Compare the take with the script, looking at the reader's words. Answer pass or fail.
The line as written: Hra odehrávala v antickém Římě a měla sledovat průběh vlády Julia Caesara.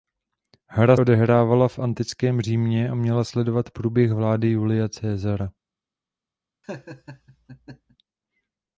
pass